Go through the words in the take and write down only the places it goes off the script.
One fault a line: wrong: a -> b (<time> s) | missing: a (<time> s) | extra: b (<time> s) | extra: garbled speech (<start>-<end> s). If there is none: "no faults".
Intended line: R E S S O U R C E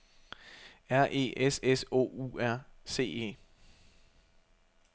no faults